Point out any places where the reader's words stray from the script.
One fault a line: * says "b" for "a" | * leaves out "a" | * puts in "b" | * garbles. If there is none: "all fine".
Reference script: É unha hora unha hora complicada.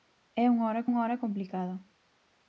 all fine